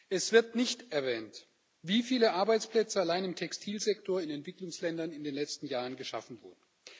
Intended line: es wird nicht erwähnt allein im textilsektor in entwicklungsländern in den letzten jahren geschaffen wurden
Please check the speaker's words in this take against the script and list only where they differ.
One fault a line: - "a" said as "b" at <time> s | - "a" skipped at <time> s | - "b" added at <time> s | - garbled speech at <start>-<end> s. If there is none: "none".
- "wie viele arbeitsplätze" added at 1.8 s